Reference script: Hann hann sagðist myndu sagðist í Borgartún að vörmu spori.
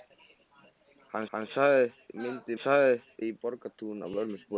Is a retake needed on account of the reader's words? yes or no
no